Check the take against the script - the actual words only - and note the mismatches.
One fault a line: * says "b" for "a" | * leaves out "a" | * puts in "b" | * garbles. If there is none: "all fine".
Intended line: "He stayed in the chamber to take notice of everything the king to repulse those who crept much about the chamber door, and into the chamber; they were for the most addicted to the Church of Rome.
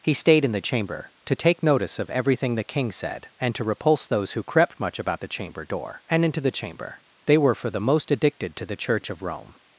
* puts in "said and"